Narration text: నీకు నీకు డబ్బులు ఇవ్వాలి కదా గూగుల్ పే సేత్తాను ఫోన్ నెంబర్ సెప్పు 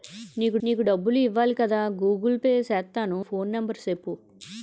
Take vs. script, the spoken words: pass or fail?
pass